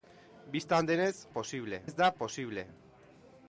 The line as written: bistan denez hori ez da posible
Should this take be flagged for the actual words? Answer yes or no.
yes